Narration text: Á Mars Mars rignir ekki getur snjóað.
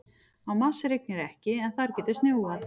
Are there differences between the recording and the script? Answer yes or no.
yes